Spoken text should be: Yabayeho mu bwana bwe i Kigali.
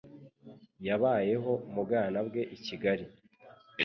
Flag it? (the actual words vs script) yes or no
no